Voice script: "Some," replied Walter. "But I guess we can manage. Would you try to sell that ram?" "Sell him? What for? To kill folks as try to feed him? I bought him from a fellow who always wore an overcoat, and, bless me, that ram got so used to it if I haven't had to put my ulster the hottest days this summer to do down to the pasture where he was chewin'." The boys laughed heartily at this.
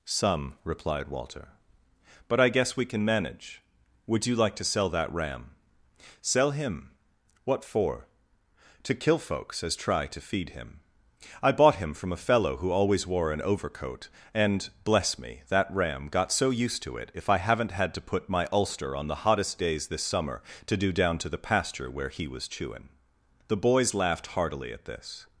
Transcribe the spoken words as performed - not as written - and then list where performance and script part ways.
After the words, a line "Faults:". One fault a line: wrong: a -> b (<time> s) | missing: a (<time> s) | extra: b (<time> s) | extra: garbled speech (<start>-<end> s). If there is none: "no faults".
"Some," replied Walter. "But I guess we can manage. Would you like to sell that ram?" "Sell him? What for? To kill folks as try to feed him? I bought him from a fellow who always wore an overcoat, and, bless me, that ram got so used to it if I haven't had to put my ulster on the hottest days this summer to do down to the pasture where he was chewin'." The boys laughed heartily at this.
Faults:
wrong: try -> like (4.3 s)
extra: on (18.9 s)